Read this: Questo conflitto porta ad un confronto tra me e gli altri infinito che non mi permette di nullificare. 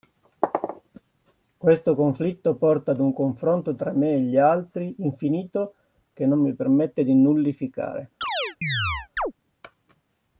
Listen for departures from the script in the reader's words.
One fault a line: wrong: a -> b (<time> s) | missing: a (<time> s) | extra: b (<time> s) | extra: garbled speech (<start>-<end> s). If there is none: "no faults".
no faults